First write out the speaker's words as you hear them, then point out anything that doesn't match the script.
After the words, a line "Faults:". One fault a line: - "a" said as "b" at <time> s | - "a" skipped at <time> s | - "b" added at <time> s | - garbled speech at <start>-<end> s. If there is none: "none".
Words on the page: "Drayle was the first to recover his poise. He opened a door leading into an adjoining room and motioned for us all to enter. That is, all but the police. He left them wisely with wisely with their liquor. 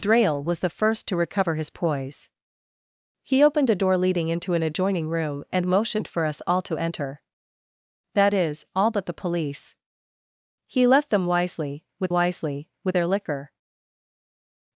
"Drayle was the first to recover his poise. He opened a door leading into an adjoining room and motioned for us all to enter. That is, all but the police. He left them wisely with wisely with their liquor.
Faults:
none